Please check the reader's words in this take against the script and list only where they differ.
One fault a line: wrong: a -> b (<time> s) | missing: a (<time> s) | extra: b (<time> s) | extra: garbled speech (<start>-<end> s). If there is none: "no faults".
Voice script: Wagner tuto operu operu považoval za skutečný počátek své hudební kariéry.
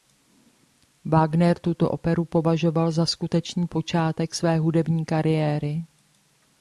missing: operu (2.2 s)